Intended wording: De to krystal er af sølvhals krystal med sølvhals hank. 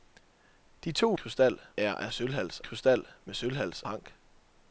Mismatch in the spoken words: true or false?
false